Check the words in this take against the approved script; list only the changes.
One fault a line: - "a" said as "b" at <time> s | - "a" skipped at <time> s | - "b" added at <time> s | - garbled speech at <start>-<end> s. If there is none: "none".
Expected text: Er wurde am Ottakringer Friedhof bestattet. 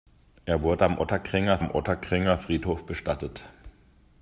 - "am Ottakringer" added at 1.6 s